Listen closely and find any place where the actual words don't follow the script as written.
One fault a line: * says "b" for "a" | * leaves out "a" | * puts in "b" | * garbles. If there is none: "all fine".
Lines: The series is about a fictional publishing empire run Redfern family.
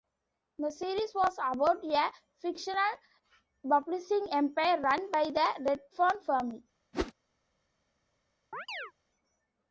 * says "was" for "is"
* puts in "by the"